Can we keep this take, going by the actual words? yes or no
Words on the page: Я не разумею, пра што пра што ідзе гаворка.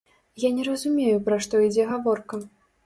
no